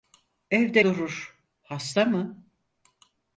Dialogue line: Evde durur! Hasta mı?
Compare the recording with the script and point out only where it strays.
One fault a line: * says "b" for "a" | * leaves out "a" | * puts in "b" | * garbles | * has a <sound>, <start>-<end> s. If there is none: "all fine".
all fine